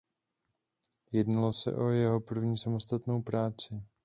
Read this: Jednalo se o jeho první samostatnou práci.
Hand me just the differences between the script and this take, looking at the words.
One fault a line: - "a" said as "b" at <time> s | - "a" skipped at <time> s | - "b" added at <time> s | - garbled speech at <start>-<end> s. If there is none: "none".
none